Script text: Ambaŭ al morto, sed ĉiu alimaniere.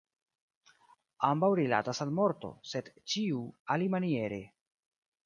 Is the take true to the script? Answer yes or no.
no